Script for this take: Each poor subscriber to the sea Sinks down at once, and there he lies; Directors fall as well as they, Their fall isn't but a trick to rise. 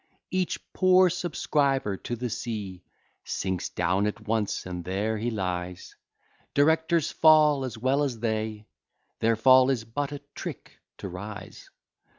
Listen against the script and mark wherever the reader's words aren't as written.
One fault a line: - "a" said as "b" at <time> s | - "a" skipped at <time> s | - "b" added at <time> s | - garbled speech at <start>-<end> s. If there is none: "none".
- "isn't" said as "is" at 9.7 s